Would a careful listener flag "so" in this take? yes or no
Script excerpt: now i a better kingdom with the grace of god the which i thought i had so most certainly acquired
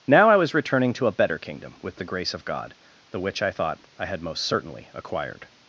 yes